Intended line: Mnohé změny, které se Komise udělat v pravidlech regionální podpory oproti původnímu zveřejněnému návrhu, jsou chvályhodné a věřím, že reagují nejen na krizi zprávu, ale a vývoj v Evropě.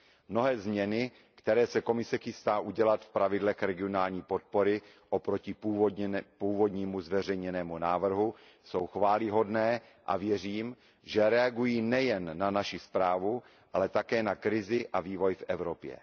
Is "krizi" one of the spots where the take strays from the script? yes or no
yes